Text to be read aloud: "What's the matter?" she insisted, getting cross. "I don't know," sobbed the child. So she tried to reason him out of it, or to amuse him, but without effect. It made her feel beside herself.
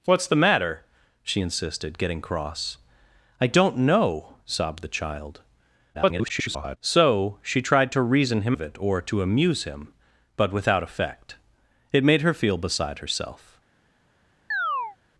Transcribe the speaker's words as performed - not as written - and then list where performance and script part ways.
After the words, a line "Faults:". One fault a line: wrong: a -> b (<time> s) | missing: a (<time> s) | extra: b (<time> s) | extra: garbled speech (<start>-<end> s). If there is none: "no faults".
"What's the matter?" she insisted, getting cross. "I don't know," sobbed the child. [garbled] So she tried to reason him of it, or to amuse him, but without effect. It made her feel beside herself.
Faults:
extra: garbled speech (5.9-6.8 s)
missing: out (8.6 s)